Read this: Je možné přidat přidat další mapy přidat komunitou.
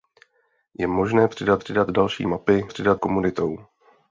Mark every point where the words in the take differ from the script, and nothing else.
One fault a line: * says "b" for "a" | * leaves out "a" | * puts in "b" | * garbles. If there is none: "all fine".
all fine